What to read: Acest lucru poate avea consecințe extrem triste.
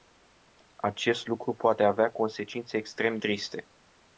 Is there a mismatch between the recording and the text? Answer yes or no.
no